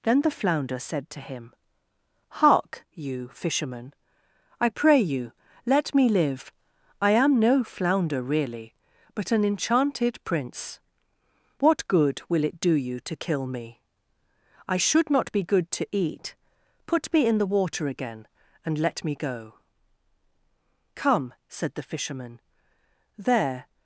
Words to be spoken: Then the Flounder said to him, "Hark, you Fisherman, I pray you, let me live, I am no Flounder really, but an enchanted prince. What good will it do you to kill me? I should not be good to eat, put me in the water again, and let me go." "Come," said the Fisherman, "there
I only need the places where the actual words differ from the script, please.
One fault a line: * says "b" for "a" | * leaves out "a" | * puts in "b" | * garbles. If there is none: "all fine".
all fine